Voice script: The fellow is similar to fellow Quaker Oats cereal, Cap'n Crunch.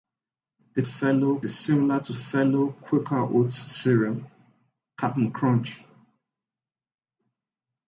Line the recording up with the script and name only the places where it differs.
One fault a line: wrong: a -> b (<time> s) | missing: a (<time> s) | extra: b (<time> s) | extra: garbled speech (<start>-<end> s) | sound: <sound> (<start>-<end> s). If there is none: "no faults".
no faults